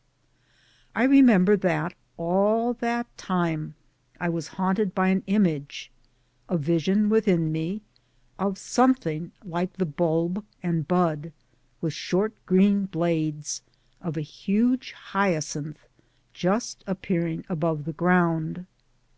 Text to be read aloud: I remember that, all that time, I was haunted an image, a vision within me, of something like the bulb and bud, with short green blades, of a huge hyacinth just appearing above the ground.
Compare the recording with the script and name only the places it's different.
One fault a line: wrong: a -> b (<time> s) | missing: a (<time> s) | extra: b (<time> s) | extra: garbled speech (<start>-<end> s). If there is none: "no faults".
extra: by (5.0 s)